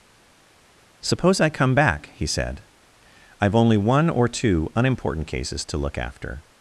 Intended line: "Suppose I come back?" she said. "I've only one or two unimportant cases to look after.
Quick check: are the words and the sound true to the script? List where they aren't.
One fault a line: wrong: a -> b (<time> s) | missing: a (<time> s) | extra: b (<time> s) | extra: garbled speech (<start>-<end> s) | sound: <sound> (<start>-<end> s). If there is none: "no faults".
wrong: she -> he (2.1 s)